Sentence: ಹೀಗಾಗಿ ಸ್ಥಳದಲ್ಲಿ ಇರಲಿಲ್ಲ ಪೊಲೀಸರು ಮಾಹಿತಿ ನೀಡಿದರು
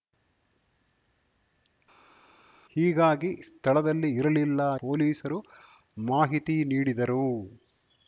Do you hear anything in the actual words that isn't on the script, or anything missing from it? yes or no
no